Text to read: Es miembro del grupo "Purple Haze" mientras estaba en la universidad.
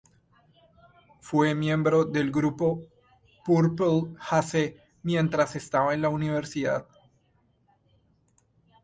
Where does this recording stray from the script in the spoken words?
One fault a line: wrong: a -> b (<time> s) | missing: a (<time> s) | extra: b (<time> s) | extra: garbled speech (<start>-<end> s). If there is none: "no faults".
wrong: Es -> Fue (1.2 s)